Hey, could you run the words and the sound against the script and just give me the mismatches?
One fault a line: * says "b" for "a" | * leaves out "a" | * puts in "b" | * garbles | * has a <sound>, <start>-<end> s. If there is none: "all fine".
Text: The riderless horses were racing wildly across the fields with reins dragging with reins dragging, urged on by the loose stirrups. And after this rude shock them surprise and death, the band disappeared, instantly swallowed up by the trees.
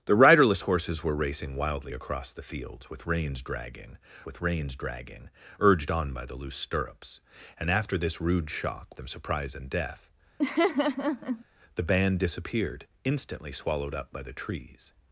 * has a laugh, 10.4-11.4 s